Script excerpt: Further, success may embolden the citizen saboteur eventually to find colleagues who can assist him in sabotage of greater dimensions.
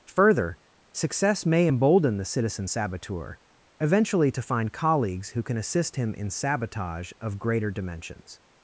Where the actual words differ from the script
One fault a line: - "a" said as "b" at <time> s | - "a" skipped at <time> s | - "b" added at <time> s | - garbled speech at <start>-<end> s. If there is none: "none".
none